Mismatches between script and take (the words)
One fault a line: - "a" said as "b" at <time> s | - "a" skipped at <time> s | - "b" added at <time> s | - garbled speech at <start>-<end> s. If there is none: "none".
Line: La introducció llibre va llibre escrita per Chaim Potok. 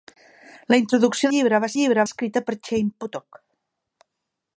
none